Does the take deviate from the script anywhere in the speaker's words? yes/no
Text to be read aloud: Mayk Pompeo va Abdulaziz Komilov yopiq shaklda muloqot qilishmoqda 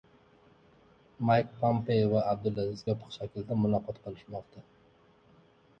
yes